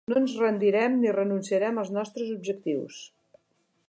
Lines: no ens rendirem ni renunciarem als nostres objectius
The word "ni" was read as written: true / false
true